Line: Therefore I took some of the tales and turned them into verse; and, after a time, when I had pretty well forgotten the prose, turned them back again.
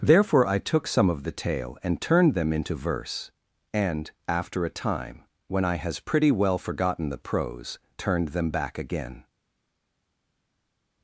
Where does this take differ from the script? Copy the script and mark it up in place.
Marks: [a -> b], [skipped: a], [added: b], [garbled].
Therefore I took some of the [tales -> tale] and turned them into verse; and, after a time, when I [had -> has] pretty well forgotten the prose, turned them back again.